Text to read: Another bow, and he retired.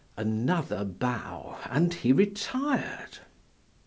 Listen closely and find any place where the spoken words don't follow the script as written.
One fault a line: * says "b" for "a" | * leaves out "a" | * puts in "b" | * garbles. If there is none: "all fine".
all fine